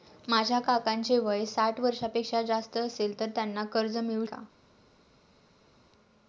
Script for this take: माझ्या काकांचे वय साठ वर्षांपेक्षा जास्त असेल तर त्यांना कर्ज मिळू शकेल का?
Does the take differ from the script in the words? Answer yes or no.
yes